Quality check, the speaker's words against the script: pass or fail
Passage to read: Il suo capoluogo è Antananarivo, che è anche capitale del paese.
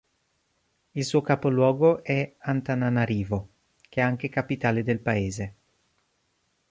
pass